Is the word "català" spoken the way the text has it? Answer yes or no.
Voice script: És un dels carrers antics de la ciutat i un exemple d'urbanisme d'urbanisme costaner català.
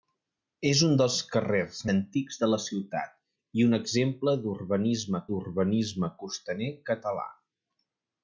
yes